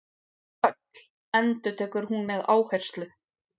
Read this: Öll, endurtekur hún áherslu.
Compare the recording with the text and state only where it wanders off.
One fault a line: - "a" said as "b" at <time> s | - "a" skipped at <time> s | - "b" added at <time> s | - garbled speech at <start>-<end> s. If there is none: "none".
- "með" added at 2.3 s